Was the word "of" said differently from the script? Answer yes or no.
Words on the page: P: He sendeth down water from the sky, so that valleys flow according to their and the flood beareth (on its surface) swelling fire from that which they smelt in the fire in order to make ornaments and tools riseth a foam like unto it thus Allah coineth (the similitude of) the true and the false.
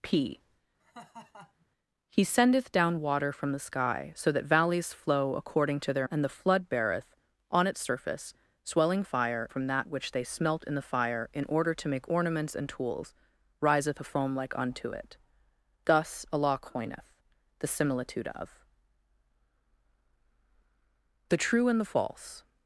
no